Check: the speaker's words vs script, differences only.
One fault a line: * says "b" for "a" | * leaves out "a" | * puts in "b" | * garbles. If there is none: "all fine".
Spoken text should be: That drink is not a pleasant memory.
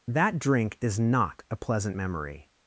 all fine